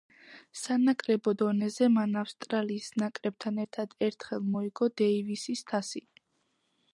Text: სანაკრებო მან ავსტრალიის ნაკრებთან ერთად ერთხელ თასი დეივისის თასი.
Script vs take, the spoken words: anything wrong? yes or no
yes